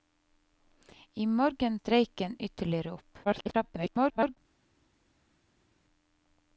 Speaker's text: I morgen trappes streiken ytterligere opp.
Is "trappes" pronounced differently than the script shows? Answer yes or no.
yes